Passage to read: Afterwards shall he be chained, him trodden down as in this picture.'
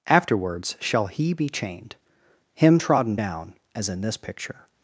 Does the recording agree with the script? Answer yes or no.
yes